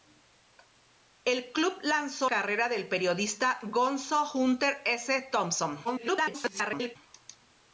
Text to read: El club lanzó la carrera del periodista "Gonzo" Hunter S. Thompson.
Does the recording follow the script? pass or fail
fail